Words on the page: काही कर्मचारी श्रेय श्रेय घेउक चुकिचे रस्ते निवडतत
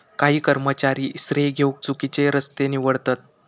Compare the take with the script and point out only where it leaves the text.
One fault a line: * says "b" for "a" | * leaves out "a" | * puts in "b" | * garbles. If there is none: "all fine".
* leaves out "श्रेय"